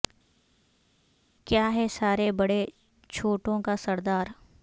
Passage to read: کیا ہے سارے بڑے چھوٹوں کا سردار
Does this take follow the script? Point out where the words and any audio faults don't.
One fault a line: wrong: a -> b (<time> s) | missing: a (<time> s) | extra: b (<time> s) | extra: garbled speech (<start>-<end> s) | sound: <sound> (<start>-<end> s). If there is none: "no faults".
no faults